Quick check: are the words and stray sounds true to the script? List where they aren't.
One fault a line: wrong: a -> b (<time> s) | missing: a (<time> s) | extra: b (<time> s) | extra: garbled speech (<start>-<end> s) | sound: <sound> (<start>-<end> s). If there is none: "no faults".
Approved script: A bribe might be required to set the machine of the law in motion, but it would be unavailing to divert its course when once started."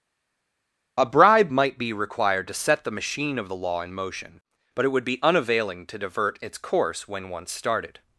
no faults